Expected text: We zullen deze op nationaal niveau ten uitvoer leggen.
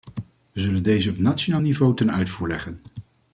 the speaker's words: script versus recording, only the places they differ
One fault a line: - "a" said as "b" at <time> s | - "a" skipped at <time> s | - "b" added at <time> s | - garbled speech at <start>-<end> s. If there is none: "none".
none